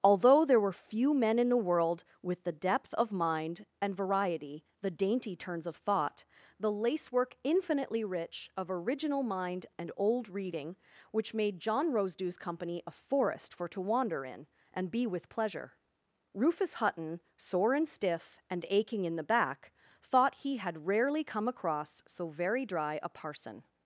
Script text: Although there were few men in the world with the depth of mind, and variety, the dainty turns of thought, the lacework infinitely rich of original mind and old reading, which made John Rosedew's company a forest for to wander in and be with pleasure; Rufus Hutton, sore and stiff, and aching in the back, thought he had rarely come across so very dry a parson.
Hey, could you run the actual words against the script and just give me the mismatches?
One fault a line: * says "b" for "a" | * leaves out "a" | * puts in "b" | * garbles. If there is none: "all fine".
all fine